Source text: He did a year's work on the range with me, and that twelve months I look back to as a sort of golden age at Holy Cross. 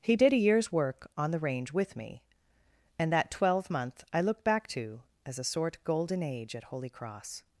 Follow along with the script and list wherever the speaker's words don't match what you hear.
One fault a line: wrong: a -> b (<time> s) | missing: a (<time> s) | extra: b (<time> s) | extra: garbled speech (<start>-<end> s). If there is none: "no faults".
wrong: months -> month (3.7 s)
missing: of (5.8 s)